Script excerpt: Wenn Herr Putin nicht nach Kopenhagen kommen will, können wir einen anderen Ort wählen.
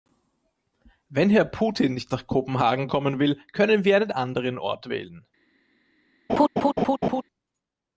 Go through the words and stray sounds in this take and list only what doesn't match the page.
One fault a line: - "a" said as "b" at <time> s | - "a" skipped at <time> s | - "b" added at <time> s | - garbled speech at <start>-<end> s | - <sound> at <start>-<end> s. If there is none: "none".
- laugh at 6.3-7.2 s